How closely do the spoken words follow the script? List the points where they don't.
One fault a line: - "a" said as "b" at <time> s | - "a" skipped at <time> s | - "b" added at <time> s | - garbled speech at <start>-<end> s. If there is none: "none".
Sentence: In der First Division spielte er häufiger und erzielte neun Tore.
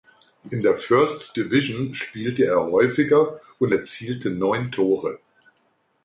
none